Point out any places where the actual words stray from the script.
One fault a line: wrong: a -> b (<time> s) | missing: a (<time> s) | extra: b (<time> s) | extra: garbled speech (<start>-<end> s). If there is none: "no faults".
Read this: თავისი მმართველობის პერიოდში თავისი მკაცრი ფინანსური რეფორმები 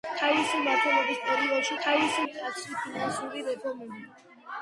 no faults